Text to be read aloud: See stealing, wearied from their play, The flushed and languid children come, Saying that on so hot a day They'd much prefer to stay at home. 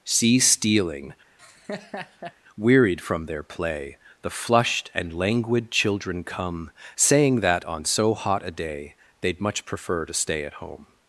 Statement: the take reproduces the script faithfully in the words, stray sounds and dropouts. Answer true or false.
false